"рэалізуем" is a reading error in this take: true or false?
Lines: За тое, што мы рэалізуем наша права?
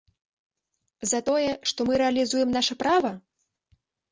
false